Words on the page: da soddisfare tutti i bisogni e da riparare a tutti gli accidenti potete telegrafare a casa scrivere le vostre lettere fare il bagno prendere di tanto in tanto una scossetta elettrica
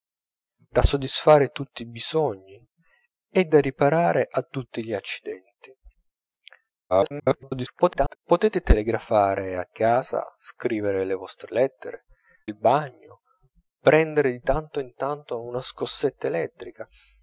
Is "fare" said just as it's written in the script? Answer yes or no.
no